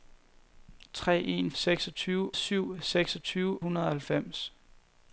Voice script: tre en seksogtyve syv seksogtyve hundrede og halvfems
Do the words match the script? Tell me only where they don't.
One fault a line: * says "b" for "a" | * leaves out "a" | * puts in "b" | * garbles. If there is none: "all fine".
all fine